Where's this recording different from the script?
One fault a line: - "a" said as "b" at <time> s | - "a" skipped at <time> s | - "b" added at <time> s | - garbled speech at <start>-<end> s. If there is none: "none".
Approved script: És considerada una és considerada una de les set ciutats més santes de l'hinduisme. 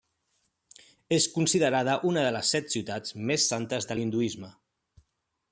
- "és considerada una" skipped at 2.2 s